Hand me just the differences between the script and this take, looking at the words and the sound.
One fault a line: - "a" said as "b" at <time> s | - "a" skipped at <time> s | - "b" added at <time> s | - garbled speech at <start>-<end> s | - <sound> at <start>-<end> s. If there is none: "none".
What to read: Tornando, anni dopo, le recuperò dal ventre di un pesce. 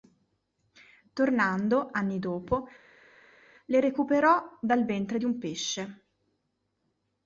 none